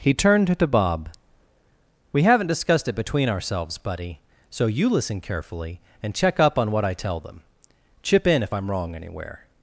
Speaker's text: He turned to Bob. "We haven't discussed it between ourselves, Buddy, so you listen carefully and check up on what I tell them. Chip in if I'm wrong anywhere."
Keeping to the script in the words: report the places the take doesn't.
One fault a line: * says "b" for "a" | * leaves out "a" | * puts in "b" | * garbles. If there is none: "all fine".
all fine